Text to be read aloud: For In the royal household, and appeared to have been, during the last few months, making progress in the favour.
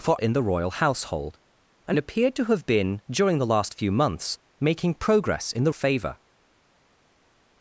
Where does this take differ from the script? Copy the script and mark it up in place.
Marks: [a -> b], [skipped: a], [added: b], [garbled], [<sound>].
For In the royal household, and appeared to have been, during the last few months, making progress in the favour.